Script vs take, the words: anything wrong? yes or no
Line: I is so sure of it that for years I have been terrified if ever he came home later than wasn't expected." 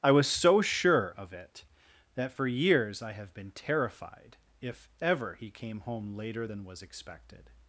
yes